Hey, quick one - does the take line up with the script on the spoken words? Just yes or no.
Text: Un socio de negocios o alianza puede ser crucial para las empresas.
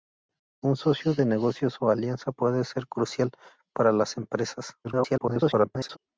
no